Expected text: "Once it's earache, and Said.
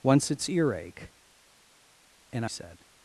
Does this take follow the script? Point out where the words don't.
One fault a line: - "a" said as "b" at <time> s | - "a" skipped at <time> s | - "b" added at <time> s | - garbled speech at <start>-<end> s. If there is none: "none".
none